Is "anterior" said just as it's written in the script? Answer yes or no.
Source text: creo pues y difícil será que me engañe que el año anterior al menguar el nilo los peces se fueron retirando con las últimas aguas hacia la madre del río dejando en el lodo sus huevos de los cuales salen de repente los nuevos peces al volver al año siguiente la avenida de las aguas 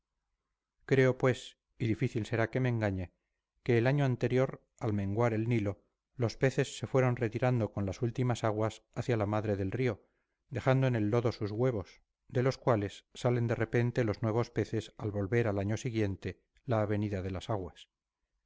yes